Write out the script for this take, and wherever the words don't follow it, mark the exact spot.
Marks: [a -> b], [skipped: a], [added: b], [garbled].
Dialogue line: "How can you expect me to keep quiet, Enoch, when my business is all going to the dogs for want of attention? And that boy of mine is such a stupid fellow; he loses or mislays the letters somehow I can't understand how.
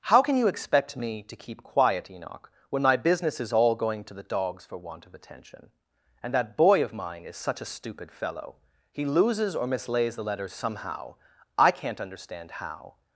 "How can you expect me to keep quiet, Enoch, when my business is all going to the dogs for want of attention? And that boy of mine is such a stupid fellow; he loses or mislays the letters somehow I can't understand how.